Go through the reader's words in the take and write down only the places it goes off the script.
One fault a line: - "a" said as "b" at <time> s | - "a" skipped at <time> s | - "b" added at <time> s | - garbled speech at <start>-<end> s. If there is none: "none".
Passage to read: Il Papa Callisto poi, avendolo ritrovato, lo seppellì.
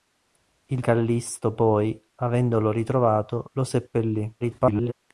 - "Papa" skipped at 0.8 s
- garbled speech at 4.4-4.9 s